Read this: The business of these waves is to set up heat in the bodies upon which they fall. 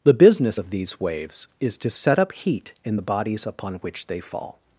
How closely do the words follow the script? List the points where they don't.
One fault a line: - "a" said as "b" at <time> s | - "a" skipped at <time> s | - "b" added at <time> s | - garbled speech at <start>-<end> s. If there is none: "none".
none